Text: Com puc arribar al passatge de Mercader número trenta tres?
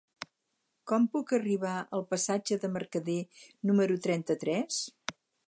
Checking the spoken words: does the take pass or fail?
pass